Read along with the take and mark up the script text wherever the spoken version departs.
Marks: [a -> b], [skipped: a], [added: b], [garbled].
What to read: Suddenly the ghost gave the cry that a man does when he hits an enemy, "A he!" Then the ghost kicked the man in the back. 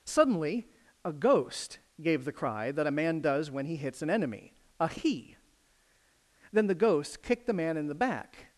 Suddenly [the -> a] ghost gave the cry that a man does when he hits an enemy, "A he!" Then the ghost kicked the man in the back.